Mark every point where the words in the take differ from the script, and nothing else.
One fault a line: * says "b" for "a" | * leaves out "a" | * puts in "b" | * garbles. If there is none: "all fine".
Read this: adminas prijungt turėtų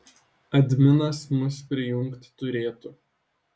* puts in "mus"